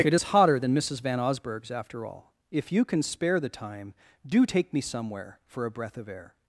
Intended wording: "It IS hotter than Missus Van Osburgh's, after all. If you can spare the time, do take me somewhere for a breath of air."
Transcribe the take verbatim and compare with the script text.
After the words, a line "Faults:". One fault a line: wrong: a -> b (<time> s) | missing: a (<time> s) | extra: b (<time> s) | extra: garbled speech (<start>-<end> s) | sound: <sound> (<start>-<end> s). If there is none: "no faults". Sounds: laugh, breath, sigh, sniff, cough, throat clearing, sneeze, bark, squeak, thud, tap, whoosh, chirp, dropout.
"It IS hotter than Missus Van Osburgh's, after all. If you can spare the time, do take me somewhere for a breath of air."
Faults:
no faults